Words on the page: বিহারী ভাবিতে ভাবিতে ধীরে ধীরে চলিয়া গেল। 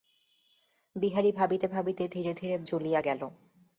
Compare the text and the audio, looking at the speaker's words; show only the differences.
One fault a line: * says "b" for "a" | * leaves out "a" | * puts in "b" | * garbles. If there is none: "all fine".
all fine